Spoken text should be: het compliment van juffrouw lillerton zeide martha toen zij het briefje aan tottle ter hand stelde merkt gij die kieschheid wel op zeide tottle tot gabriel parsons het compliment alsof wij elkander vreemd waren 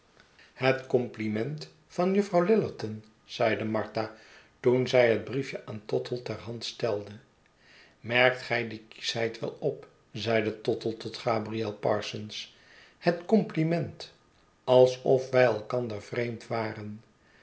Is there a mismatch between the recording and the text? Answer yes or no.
no